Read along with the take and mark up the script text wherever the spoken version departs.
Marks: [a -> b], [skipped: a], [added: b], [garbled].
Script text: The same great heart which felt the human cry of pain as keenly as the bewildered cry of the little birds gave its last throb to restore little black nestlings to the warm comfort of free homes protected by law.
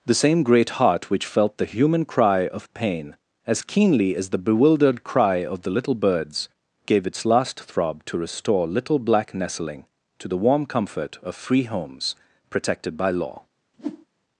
The same great heart which felt the human cry of pain as keenly as the bewildered cry of the little birds gave its last throb to restore little black [nestlings -> nestling] to the warm comfort of free homes protected by law.